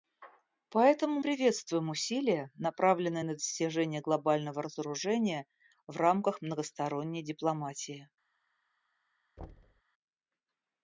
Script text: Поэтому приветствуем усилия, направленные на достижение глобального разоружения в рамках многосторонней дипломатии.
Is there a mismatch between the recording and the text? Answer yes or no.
no